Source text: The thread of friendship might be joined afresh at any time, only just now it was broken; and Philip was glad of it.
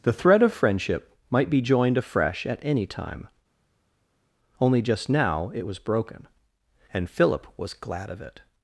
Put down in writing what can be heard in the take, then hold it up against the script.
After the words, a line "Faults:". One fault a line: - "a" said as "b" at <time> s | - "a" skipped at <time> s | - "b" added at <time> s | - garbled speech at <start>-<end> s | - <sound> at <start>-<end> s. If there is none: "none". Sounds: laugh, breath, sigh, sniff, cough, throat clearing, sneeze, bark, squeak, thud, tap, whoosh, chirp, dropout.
The thread of friendship might be joined afresh at any time, only just now it was broken; and Philip was glad of it.
Faults:
none